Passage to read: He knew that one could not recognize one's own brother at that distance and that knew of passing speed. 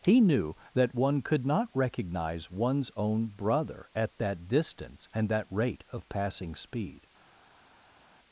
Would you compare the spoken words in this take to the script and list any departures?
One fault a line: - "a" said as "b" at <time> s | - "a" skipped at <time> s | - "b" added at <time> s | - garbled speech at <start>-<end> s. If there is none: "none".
- "knew" said as "rate" at 5.5 s